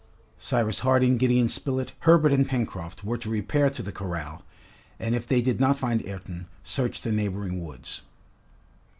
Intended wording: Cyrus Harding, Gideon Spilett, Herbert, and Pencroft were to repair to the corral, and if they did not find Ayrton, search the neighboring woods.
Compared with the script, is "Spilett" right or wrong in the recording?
right